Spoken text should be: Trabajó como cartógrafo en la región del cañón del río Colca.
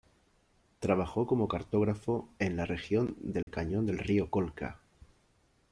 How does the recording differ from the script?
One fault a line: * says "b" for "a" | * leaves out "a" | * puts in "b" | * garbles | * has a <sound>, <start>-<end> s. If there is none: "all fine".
* has a dropout, 3.4-3.5 s